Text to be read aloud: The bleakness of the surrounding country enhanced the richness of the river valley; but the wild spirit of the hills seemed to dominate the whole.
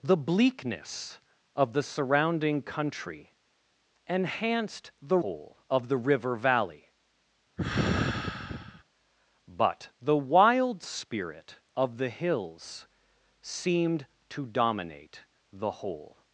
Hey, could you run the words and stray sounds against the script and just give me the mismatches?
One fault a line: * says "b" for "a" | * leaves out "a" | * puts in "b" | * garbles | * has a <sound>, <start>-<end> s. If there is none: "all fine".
* says "whole" for "richness"
* has a sigh, 7.6-8.8 s